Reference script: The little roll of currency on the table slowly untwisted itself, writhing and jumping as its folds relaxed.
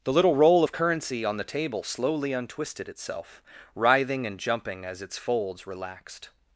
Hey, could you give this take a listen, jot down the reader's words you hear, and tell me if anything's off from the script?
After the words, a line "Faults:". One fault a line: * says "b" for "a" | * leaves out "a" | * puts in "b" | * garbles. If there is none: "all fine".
The little roll of currency on the table slowly untwisted itself, writhing and jumping as its folds relaxed.
Faults:
all fine